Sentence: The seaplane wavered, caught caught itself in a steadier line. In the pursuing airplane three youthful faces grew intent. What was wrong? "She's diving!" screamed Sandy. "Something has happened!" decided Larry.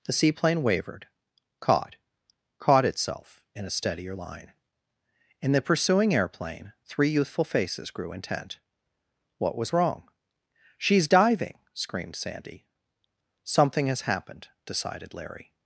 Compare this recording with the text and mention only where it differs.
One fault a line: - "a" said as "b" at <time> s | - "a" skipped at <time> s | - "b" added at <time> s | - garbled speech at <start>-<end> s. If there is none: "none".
none